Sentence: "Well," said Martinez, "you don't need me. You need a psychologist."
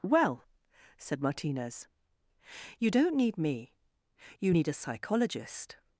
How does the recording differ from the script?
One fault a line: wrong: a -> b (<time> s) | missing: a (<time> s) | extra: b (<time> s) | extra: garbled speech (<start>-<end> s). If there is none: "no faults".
no faults